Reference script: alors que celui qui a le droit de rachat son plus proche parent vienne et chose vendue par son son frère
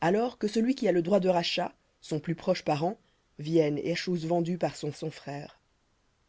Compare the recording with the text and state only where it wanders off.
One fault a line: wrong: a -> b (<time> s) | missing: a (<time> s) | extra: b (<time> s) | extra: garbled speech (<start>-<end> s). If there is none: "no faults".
no faults